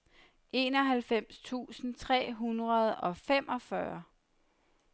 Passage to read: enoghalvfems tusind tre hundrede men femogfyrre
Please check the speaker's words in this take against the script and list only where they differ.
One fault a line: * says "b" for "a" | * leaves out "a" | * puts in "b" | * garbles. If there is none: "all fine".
* says "og" for "men"